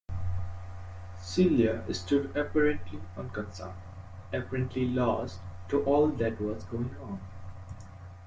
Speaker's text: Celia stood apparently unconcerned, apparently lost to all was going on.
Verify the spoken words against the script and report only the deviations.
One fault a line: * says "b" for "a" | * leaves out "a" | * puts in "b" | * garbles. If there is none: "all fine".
* puts in "that"